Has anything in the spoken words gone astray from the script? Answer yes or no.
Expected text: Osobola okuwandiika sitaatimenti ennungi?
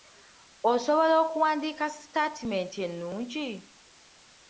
no